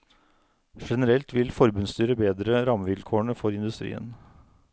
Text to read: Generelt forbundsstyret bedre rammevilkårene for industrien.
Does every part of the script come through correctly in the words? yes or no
no